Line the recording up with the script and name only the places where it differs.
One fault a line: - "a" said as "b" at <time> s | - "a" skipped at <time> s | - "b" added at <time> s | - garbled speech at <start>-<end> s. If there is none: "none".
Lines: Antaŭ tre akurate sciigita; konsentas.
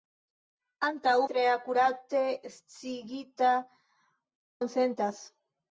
none